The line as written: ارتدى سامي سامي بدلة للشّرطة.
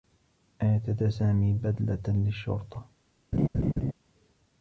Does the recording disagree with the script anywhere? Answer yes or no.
yes